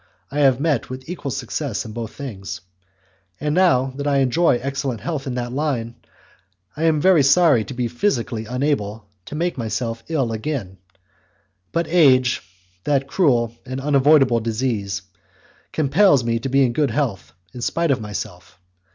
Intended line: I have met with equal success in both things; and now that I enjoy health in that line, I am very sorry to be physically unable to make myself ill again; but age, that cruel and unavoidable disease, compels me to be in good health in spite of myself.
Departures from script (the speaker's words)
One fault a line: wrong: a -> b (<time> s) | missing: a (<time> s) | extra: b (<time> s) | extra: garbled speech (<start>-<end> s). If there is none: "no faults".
extra: excellent (4.6 s)